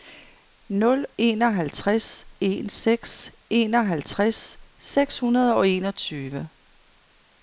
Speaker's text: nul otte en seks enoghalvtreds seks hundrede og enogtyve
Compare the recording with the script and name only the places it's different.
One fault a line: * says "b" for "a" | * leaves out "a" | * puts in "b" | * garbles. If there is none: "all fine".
* says "enoghalvtreds" for "otte"